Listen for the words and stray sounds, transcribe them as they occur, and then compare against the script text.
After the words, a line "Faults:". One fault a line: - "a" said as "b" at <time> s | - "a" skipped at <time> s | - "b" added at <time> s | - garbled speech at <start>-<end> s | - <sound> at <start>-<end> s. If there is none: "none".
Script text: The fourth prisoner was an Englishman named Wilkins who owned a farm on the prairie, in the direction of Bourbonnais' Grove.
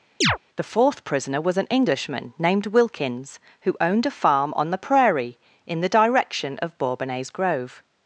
The fourth prisoner was an Englishman named Wilkins who owned a farm on the prairie, in the direction of Bourbonnais' Grove.
Faults:
- chirp at 0.2-0.4 s